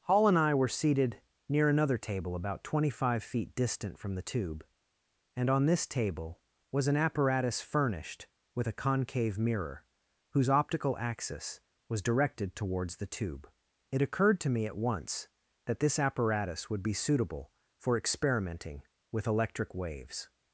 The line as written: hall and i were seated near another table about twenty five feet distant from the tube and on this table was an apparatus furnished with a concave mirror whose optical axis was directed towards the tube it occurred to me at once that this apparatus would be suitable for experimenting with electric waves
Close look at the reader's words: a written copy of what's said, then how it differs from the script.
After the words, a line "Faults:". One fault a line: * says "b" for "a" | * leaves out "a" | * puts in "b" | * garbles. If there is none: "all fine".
hall and i were seated near another table about twenty five feet distant from the tube and on this table was an apparatus furnished with a concave mirror whose optical axis was directed towards the tube it occurred to me at once that this apparatus would be suitable for experimenting with electric waves
Faults:
all fine